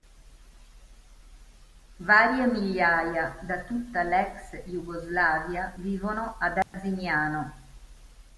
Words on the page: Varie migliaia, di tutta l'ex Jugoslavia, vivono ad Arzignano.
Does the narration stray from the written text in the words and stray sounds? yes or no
yes